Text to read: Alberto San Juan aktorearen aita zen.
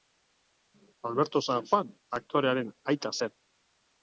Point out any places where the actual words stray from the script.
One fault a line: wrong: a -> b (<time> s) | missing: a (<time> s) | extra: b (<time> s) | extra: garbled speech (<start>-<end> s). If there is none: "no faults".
no faults